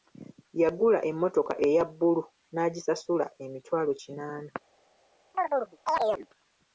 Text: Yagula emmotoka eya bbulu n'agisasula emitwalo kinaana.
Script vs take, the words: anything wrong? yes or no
no